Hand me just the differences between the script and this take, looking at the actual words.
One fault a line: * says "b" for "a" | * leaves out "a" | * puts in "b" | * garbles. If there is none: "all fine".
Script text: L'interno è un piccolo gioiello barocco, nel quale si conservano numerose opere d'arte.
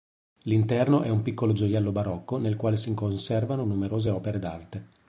all fine